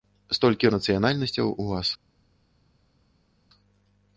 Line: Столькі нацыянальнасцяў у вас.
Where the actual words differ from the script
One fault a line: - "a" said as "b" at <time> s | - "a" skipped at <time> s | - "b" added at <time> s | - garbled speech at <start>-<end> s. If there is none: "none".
none